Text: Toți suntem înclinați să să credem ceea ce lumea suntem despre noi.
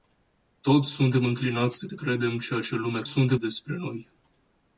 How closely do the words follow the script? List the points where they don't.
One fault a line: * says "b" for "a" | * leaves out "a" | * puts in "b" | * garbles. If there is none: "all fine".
all fine